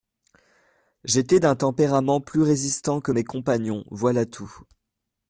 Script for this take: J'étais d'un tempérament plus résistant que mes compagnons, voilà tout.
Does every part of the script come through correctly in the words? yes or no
yes